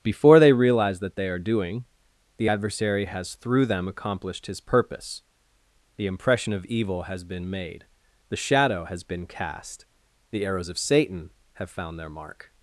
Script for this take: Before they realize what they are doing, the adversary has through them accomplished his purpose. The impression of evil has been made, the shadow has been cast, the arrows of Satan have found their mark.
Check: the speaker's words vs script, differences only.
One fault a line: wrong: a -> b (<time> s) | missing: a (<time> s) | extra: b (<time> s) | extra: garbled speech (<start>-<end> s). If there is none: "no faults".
wrong: what -> that (1.0 s)